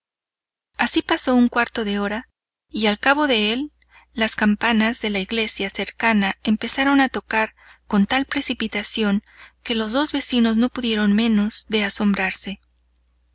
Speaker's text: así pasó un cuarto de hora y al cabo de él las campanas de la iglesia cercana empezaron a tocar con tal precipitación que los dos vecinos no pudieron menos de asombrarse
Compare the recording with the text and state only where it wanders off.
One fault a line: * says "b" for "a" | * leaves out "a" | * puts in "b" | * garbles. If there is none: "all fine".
all fine